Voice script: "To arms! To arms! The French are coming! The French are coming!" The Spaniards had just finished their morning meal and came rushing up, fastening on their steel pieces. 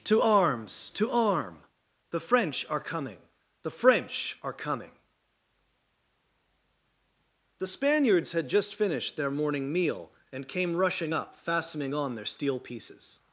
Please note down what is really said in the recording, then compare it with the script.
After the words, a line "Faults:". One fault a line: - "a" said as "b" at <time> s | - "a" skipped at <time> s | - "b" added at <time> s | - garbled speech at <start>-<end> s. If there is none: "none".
"To arms! To arm! The French are coming! The French are coming!" The Spaniards had just finished their morning meal and came rushing up, fastening on their steel pieces.
Faults:
- "arms" said as "arm" at 1.1 s